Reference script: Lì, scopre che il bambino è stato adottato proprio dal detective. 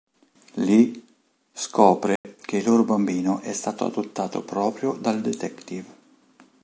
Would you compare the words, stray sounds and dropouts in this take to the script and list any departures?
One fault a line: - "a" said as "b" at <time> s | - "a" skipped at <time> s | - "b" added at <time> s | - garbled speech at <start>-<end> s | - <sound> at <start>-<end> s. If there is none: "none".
- dropout at 2.2-2.2 s
- "loro" added at 2.6 s